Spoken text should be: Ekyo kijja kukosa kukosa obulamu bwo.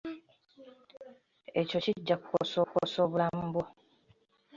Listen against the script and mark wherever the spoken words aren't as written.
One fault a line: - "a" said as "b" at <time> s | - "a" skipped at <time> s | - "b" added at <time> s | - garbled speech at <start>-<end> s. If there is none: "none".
none